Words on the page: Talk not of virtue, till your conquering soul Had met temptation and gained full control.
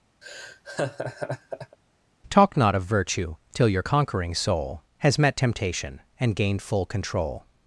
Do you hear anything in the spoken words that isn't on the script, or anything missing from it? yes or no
yes